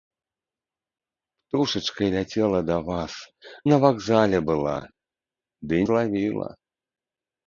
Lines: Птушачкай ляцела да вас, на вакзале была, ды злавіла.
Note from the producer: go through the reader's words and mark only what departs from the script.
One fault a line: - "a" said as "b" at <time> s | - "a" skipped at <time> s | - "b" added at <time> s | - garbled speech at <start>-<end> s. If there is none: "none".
none